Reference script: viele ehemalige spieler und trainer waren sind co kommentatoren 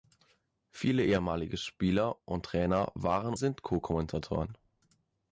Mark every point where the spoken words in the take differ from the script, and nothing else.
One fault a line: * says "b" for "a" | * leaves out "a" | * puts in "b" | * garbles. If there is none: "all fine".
all fine